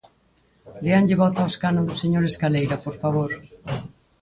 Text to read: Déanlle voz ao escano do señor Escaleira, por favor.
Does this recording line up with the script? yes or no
yes